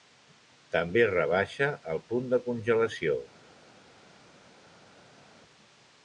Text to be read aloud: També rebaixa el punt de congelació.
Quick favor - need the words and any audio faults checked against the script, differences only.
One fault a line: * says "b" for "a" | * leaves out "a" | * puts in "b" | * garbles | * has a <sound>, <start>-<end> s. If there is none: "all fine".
all fine